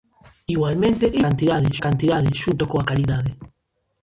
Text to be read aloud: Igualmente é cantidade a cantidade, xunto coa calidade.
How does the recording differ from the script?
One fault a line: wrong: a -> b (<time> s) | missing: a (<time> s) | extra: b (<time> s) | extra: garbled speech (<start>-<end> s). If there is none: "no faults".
no faults